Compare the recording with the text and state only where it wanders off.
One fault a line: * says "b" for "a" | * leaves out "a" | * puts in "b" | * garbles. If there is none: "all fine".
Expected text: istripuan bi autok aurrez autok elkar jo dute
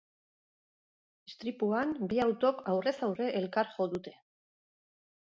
* says "aurre" for "autok"